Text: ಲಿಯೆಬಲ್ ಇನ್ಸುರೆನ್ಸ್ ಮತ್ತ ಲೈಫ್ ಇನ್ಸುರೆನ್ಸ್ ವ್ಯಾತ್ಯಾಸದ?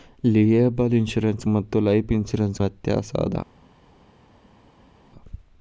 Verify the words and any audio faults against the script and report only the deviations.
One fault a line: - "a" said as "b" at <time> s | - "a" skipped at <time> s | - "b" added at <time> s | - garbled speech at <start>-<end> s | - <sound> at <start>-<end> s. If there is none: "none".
none